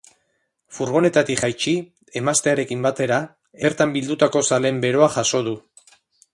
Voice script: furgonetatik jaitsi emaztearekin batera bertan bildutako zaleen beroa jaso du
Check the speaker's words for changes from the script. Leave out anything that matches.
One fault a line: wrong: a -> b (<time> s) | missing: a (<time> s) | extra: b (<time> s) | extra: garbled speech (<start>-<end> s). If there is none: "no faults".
no faults